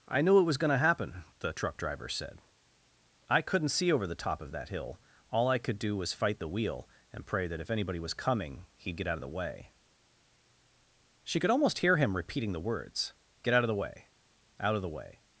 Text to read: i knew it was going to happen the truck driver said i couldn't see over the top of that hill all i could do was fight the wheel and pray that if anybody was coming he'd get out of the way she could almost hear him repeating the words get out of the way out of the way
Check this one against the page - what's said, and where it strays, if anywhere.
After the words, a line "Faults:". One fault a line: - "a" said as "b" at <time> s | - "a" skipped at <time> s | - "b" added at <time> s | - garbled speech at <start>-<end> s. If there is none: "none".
i knew it was going to happen the truck driver said i couldn't see over the top of that hill all i could do was fight the wheel and pray that if anybody was coming he'd get out of the way she could almost hear him repeating the words get out of the way out of the way
Faults:
none